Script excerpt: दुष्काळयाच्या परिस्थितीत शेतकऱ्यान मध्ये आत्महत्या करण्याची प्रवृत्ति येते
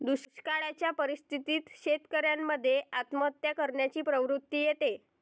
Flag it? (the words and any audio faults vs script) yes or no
no